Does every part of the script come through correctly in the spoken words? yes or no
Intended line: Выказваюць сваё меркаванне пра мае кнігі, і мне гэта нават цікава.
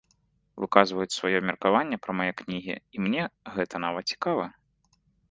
yes